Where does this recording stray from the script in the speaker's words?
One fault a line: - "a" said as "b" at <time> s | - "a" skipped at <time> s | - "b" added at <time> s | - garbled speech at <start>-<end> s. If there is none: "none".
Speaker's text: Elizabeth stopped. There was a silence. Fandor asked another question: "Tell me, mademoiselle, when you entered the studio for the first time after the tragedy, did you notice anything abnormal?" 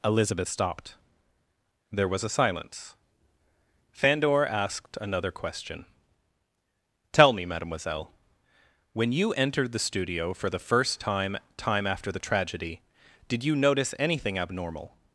- "time" added at 11.6 s